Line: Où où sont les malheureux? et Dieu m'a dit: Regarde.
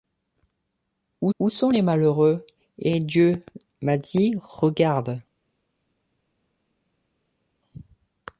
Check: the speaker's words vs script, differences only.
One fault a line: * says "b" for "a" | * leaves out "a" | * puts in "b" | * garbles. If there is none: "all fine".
all fine